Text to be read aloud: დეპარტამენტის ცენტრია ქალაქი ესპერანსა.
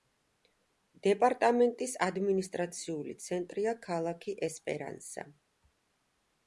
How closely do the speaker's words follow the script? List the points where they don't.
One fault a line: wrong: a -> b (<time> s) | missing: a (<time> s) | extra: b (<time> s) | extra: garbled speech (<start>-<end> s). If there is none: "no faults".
extra: ადმინისტრაციული (2.1 s)